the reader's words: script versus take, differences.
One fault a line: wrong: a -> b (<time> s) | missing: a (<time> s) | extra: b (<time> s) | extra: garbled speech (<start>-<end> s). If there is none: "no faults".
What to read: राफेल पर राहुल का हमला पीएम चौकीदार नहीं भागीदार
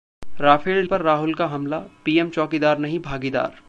no faults